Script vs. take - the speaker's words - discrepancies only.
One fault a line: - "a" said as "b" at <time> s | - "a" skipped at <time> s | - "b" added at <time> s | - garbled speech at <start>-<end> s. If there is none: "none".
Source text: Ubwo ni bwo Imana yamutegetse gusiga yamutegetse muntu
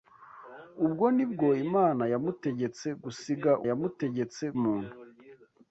none